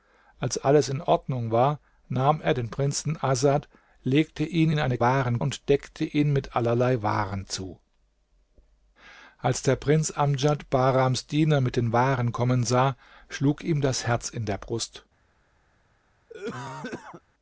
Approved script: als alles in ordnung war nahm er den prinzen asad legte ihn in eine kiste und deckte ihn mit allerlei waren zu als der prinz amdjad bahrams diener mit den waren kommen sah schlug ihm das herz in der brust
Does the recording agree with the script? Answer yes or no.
no